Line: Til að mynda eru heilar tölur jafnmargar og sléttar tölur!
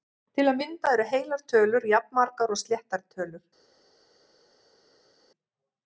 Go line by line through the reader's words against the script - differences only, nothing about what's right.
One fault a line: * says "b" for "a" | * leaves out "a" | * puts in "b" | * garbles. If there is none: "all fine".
all fine